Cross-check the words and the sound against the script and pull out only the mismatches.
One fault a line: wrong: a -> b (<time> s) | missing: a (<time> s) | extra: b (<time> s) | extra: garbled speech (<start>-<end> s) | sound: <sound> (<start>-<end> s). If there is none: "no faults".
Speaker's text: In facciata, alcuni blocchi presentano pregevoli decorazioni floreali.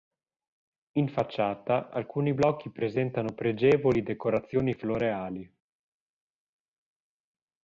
no faults